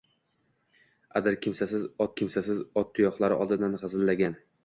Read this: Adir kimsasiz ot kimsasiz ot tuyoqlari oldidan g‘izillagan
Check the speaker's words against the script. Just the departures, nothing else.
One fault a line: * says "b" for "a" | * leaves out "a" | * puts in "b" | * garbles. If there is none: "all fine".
all fine